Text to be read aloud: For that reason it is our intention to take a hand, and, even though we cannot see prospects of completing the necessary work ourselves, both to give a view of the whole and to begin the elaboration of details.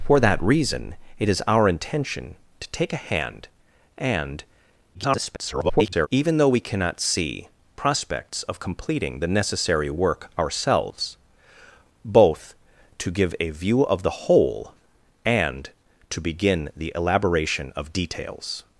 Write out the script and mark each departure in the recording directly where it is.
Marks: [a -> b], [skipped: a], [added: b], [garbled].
For that reason it is our intention to take a hand, and, [garbled] even though we cannot see prospects of completing the necessary work ourselves, both to give a view of the whole and to begin the elaboration of details.